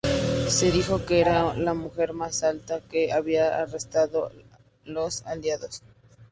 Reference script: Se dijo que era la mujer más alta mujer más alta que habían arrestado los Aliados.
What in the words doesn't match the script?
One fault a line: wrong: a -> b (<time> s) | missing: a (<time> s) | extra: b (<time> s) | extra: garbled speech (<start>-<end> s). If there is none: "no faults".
missing: mujer más alta (2.8 s)